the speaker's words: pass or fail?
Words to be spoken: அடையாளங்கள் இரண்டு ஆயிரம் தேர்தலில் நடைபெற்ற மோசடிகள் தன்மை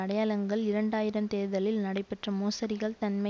pass